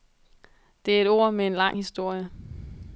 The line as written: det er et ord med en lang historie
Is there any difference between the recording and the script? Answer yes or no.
no